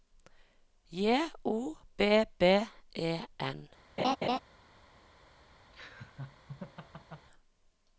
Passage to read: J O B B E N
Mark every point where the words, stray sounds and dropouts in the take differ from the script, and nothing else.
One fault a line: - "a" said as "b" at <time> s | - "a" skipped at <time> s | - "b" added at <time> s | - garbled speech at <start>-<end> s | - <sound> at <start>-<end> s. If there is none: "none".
- laugh at 4.0-4.4 s
- laugh at 5.7-7.3 s